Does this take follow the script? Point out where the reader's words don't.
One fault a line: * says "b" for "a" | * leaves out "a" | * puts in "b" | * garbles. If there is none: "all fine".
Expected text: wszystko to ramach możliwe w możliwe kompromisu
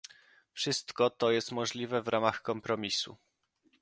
* says "jest" for "ramach"
* says "ramach" for "możliwe"